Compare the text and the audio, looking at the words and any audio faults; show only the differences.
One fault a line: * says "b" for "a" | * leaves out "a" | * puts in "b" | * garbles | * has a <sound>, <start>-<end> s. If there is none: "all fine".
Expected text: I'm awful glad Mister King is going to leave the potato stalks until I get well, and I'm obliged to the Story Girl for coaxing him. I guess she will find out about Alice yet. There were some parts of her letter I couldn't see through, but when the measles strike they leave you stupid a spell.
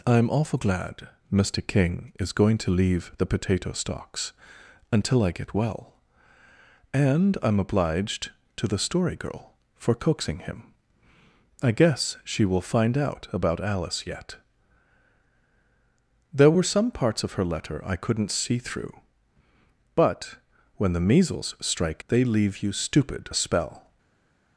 all fine